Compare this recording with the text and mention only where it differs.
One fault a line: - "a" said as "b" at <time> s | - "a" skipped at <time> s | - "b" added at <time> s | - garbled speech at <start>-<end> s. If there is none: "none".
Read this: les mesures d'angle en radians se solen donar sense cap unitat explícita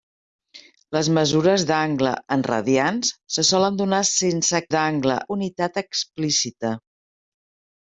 - "cap" said as "d'angle" at 4.7 s